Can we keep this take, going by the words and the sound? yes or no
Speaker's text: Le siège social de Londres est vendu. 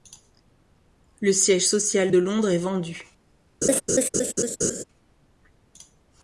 no